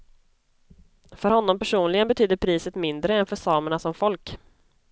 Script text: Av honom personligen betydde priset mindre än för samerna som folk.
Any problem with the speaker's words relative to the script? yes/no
yes